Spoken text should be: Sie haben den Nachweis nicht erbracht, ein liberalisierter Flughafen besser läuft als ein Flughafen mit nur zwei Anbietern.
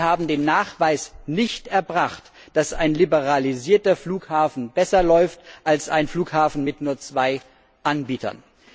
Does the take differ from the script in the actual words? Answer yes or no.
yes